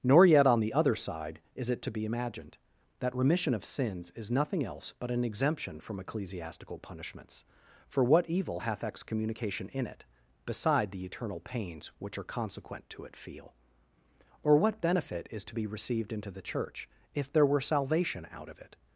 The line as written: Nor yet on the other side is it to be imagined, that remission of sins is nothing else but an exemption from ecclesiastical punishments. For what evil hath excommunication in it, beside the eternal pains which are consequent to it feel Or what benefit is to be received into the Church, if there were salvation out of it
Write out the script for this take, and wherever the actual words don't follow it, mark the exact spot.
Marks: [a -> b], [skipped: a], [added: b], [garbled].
Nor yet on the other side is it to be imagined, that remission of sins is nothing else but an exemption from ecclesiastical punishments. For what evil hath excommunication in it, beside the eternal pains which are consequent to it feel Or what benefit is to be received into the Church, if there were salvation out of it